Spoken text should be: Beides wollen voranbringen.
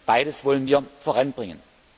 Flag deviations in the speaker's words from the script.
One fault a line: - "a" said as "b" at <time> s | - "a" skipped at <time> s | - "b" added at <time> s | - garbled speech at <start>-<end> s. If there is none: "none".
- "wir" added at 0.6 s